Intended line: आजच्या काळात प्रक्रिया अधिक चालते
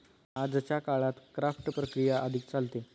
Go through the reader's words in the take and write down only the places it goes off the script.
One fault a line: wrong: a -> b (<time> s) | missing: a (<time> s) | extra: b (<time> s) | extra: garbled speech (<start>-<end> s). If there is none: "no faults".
extra: क्राफ्ट (1.4 s)